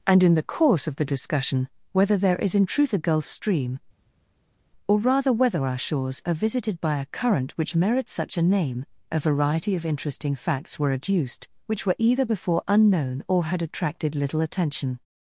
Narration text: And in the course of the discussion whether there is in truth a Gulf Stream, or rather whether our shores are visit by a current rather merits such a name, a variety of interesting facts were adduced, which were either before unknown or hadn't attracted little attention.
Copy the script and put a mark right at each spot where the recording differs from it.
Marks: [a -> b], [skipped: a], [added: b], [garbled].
And in the course of the discussion whether there is in truth a Gulf Stream, or rather whether our shores are [visit -> visited] by a current [rather -> which] merits such a name, a variety of interesting facts were adduced, which were either before unknown or [hadn't -> had] attracted little attention.